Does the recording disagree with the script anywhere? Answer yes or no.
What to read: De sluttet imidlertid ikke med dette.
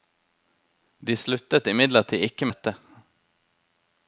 yes